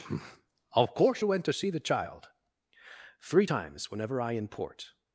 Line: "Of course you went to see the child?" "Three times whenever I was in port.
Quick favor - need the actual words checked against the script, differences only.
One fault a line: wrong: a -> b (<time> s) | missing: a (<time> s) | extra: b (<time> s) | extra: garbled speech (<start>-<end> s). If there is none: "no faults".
missing: was (4.3 s)